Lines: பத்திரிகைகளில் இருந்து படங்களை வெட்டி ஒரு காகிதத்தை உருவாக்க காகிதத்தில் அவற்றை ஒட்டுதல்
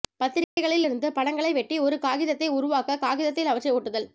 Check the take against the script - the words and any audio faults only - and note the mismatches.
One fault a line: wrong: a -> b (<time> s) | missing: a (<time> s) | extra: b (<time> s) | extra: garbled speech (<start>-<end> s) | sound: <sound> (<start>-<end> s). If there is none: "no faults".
sound: dropout (0.4-0.6 s)